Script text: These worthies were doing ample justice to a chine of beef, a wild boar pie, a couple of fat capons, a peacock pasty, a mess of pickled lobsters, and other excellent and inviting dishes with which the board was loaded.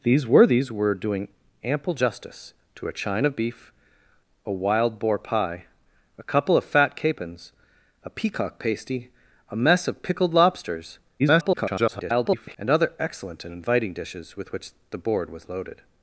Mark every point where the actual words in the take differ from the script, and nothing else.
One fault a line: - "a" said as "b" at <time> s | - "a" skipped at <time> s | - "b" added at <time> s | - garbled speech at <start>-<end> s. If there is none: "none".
- garbled speech at 11.2-12.6 s